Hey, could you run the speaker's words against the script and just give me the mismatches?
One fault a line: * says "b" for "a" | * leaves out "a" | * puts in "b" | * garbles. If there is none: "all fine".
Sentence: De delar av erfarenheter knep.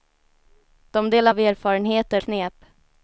all fine